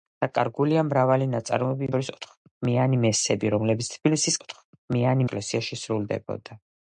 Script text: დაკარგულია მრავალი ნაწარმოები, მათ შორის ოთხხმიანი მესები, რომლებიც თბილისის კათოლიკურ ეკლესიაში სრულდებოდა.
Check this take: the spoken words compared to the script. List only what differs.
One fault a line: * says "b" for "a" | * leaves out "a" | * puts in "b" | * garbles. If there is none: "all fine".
* leaves out "მათ"
* says "ოთხხმიანი" for "კათოლიკურ"